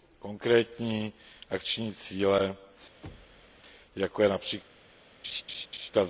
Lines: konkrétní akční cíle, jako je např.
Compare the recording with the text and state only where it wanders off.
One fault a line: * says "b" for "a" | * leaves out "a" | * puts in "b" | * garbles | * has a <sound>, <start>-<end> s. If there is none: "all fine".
* has a thud, 3.0-3.6 s
* has a laugh, 5.2-5.9 s